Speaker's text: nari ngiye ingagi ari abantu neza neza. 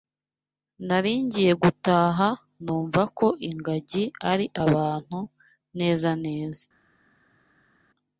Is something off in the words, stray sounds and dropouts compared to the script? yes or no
yes